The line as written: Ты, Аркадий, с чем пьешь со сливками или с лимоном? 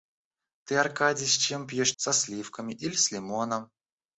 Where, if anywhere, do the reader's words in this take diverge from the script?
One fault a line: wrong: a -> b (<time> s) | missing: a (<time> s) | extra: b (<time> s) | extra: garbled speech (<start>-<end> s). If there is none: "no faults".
no faults